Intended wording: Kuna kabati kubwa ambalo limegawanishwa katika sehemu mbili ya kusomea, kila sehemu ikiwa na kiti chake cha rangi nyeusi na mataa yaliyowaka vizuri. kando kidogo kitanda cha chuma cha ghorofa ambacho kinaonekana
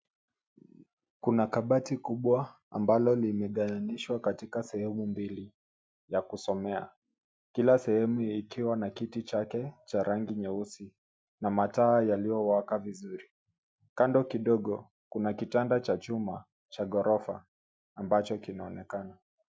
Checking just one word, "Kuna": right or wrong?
right